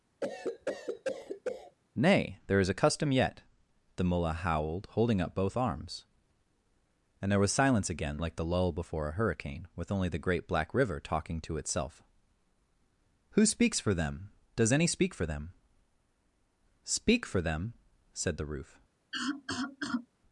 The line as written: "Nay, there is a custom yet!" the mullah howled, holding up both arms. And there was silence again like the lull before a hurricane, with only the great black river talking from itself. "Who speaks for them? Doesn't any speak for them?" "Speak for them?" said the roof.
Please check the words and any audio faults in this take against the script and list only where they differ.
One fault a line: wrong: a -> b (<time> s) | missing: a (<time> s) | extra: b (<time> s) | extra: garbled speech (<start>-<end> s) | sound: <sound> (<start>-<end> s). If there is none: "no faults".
sound: cough (0.2-1.8 s)
wrong: from -> to (11.4 s)
wrong: Doesn't -> Does (14.5 s)
sound: cough (19.1-20.1 s)